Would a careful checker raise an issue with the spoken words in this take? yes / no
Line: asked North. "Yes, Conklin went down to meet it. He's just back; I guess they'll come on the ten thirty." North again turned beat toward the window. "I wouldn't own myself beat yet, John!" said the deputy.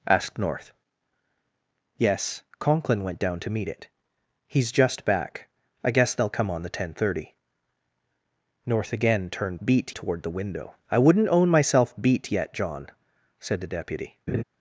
no